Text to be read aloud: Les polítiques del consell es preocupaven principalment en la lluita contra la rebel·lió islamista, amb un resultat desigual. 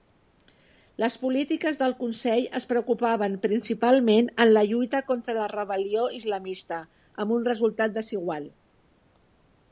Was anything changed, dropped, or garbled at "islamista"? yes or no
no